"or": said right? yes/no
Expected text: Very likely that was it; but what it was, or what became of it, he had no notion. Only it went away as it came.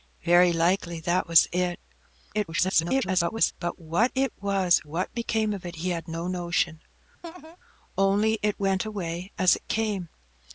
no